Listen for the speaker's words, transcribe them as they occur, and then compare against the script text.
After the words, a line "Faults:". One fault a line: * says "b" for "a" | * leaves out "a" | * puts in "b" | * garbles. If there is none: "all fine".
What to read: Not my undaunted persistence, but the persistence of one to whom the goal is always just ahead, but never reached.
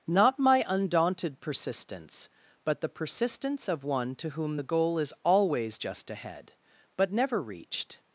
Not my undaunted persistence, but the persistence of one to whom the goal is always just ahead, but never reached.
Faults:
all fine